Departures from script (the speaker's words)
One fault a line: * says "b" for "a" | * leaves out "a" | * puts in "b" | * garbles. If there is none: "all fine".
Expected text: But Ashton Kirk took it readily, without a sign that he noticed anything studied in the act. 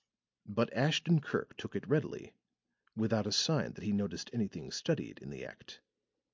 all fine